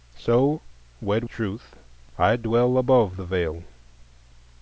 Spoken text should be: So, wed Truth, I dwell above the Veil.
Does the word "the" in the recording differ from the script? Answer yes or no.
no